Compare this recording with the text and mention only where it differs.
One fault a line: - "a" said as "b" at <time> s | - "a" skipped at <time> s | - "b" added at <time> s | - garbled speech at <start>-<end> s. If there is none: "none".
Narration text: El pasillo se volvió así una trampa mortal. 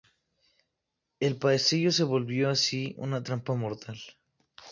none